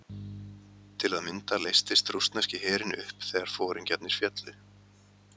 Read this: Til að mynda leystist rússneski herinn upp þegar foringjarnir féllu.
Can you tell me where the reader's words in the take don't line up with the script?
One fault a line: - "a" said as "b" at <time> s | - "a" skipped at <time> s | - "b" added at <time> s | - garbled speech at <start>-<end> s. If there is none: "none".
none